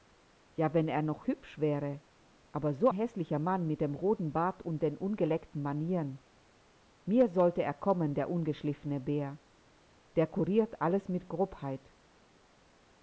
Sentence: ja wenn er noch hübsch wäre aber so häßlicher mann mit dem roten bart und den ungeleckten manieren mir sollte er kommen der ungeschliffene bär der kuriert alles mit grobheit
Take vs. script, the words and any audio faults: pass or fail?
pass